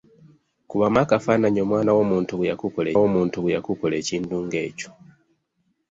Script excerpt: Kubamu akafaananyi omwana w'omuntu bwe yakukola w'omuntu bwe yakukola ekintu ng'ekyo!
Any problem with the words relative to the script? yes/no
no